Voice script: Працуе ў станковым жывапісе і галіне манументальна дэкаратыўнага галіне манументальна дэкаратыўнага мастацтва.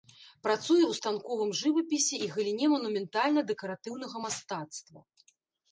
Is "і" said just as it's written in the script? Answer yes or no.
yes